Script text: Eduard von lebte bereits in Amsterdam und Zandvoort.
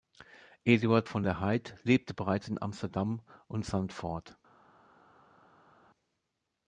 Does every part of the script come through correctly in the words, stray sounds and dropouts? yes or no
no